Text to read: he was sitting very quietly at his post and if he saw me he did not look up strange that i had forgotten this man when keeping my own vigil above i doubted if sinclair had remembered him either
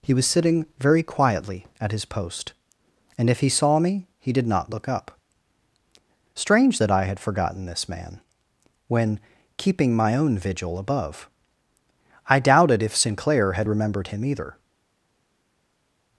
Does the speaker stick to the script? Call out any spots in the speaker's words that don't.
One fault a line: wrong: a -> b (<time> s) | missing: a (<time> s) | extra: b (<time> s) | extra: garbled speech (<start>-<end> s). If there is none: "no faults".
no faults